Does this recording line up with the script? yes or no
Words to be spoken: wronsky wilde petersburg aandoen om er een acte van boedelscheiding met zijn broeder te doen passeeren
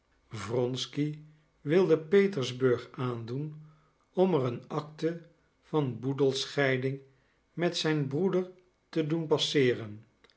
yes